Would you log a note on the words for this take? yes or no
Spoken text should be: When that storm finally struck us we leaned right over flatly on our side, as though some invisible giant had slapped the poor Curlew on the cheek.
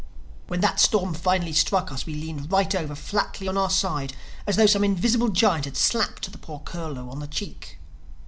no